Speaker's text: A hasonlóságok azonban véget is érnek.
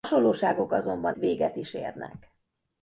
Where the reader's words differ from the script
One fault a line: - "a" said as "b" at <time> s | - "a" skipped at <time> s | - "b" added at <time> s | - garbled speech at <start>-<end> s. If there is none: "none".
none